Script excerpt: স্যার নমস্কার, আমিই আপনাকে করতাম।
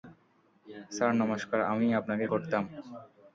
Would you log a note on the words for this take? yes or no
no